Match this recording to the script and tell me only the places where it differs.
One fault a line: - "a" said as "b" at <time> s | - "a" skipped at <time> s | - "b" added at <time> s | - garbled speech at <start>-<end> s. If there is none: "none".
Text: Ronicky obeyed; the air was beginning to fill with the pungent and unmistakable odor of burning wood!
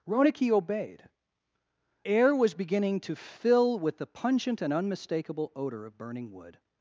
- "the" skipped at 1.1 s